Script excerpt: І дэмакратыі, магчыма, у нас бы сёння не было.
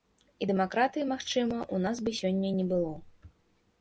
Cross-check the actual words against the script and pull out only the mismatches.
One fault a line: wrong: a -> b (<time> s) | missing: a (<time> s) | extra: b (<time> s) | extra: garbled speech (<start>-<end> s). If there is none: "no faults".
no faults